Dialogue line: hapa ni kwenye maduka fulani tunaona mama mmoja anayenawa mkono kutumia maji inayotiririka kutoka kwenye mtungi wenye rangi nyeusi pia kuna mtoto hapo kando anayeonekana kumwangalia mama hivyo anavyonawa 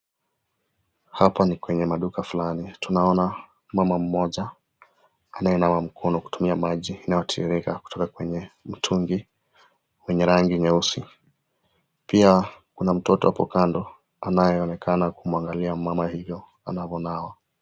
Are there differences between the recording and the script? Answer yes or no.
no